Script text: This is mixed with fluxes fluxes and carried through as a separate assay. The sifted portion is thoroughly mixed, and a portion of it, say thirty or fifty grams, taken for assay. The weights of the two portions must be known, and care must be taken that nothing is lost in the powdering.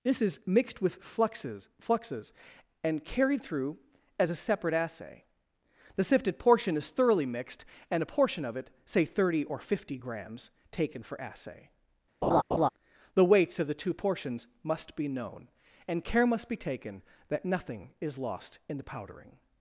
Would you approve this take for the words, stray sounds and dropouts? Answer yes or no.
no